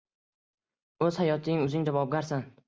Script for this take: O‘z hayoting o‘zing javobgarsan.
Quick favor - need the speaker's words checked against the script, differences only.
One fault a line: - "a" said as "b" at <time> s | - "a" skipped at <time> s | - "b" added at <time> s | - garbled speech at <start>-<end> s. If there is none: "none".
none